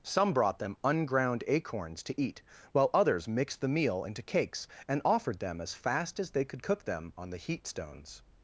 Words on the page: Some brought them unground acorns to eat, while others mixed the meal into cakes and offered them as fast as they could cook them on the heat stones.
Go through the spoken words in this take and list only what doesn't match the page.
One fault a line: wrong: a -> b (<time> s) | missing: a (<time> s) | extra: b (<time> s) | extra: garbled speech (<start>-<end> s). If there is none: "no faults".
no faults